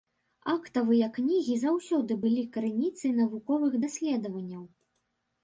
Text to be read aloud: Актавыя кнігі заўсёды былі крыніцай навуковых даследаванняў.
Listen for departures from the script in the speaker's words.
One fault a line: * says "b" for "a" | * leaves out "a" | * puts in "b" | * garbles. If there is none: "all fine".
all fine